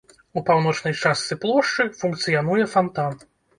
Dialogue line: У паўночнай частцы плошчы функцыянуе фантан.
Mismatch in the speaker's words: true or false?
false